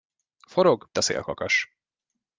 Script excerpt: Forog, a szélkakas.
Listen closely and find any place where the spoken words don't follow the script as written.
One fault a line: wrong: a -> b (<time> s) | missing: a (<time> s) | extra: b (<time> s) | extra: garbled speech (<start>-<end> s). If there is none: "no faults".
no faults